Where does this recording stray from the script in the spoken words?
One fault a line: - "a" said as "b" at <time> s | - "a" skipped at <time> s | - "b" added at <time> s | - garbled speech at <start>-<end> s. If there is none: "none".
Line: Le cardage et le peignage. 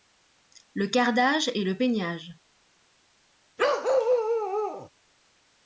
none